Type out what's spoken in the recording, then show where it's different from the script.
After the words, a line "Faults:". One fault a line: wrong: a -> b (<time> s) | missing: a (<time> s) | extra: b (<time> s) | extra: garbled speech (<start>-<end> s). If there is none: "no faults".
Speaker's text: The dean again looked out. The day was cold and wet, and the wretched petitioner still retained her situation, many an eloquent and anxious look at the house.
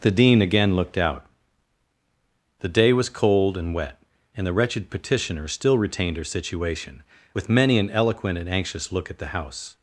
The dean again looked out. The day was cold and wet, and the wretched petitioner still retained her situation, with many an eloquent and anxious look at the house.
Faults:
extra: with (7.3 s)